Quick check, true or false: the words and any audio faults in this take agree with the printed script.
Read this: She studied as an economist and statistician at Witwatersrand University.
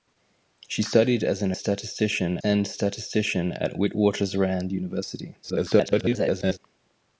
false